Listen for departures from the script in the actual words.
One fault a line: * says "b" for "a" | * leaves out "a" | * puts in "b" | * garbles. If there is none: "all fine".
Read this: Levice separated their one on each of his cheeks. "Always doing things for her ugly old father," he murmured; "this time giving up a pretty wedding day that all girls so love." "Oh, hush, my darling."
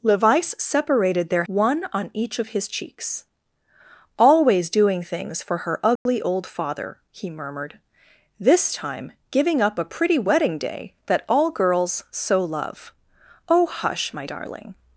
all fine